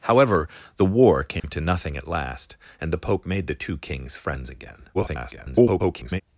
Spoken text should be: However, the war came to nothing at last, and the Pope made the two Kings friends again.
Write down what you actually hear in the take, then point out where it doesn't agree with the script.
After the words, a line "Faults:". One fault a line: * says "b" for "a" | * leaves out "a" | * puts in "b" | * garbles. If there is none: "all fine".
However, the war came to nothing at last, and the Pope made the two Kings friends again. [garbled]
Faults:
* garbles